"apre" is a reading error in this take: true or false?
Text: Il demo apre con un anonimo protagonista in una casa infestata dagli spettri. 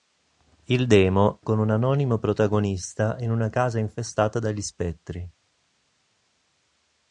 true